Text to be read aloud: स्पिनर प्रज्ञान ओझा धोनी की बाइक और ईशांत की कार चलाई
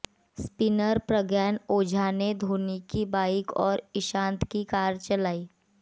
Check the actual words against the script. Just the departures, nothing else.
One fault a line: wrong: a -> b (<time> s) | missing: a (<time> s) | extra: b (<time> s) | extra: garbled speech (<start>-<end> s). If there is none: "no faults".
extra: ने (2.1 s)